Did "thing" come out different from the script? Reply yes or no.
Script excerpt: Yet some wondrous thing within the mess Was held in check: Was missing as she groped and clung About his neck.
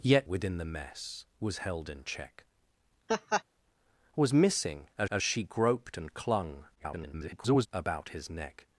yes